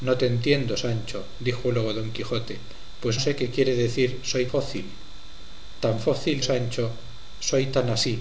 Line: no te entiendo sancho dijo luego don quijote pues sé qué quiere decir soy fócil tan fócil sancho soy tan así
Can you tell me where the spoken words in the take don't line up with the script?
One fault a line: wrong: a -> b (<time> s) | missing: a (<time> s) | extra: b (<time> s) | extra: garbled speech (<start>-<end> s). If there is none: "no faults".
no faults